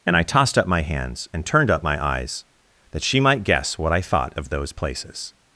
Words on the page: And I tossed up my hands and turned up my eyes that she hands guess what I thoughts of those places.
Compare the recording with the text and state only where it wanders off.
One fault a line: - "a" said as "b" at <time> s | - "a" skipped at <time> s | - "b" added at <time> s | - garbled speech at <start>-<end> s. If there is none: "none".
- "hands" said as "might" at 3.2 s
- "thoughts" said as "thought" at 4.0 s